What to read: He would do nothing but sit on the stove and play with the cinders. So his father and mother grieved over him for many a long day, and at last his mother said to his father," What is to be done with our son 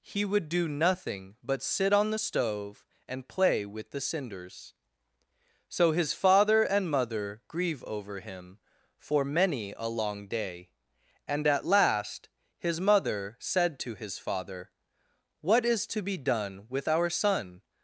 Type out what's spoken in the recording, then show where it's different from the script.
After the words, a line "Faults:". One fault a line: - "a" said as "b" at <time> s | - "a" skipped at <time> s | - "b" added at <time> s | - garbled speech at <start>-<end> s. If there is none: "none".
He would do nothing but sit on the stove and play with the cinders. So his father and mother grieve over him for many a long day, and at last his mother said to his father," What is to be done with our son
Faults:
- "grieved" said as "grieve" at 7.5 s